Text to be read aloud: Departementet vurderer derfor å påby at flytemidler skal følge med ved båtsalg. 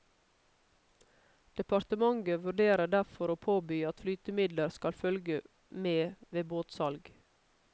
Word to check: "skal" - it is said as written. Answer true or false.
true